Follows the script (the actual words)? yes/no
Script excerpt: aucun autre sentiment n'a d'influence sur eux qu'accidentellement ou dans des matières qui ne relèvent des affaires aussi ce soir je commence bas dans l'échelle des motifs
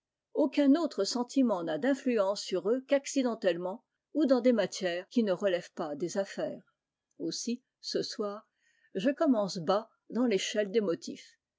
no